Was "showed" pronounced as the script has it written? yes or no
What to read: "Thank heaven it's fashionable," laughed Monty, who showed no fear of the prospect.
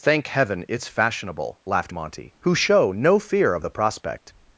no